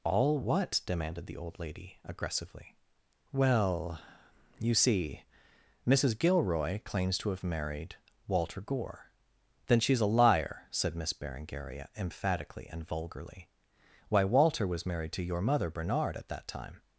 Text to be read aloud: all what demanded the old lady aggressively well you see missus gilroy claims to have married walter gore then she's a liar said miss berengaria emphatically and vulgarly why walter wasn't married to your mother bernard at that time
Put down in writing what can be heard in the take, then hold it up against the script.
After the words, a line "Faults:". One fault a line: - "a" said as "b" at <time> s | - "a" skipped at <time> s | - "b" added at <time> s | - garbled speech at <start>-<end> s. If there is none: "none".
all what demanded the old lady aggressively well you see missus gilroy claims to have married walter gore then she's a liar said miss berengaria emphatically and vulgarly why walter was married to your mother bernard at that time
Faults:
- "wasn't" said as "was" at 14.7 s